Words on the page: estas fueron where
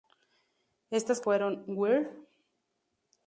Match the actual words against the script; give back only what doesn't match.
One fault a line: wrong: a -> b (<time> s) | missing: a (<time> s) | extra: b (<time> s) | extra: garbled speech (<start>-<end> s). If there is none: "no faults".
no faults